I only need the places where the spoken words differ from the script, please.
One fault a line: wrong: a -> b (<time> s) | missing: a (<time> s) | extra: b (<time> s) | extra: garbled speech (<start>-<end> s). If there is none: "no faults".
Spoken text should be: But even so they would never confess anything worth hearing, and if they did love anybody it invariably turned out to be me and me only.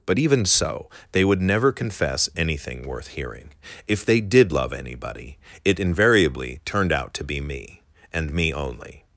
missing: and (3.5 s)